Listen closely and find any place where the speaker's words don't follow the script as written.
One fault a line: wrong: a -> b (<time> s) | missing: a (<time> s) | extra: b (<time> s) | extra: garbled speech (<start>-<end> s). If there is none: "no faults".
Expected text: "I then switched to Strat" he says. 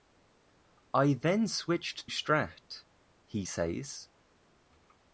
missing: to (2.1 s)